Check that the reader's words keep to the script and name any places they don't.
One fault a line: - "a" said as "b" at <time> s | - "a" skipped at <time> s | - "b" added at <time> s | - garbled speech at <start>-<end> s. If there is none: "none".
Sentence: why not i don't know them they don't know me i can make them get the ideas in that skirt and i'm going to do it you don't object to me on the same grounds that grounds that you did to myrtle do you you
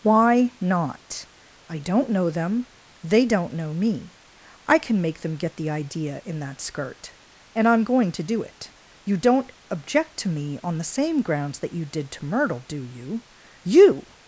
- "ideas" said as "idea" at 5.7 s
- "grounds that" skipped at 11.7 s